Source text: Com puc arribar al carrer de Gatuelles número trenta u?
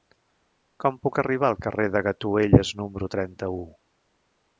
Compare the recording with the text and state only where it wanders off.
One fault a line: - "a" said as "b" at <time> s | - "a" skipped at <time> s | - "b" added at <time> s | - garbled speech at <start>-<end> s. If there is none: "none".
none